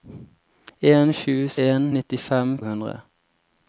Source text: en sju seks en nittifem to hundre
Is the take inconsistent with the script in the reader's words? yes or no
yes